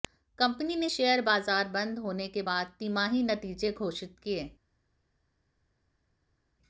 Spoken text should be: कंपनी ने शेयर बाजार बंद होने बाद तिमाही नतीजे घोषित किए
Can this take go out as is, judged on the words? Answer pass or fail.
fail